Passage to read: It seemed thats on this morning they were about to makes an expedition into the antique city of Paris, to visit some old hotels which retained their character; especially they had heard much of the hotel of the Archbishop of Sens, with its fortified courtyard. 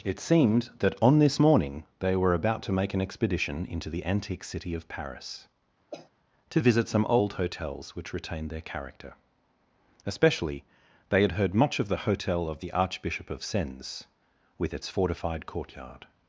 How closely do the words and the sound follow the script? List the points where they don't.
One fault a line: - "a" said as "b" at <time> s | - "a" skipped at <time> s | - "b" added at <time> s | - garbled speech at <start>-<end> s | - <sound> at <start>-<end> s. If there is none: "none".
- "thats" said as "that" at 0.8 s
- "makes" said as "make" at 2.7 s
- cough at 5.9-6.1 s